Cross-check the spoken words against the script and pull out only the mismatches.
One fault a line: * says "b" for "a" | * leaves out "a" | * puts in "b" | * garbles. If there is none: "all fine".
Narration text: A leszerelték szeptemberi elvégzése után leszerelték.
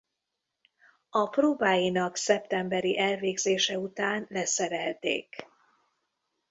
* says "próbáinak" for "leszerelték"